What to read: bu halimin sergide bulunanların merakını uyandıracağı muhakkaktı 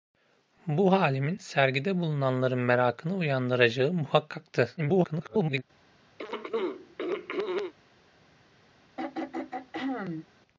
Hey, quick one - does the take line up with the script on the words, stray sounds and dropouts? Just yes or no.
no